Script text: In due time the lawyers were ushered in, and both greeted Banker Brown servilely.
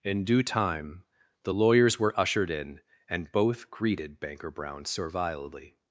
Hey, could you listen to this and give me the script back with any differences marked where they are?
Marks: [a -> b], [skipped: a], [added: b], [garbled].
In due time the lawyers were ushered in, and both greeted Banker Brown servilely.